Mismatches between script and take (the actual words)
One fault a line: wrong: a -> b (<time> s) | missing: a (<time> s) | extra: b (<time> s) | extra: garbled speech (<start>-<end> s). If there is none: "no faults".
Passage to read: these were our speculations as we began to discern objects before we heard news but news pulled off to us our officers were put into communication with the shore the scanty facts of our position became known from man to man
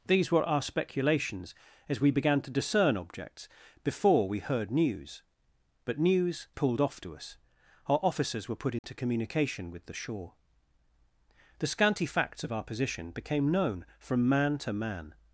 no faults